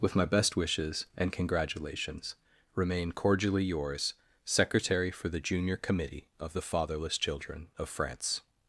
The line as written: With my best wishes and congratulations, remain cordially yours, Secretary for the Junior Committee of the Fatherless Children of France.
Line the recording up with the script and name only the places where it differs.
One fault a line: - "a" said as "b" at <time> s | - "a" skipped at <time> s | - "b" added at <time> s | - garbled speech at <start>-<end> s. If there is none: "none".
none